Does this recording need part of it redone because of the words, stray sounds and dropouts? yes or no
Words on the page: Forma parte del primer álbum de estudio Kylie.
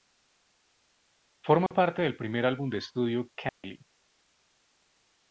yes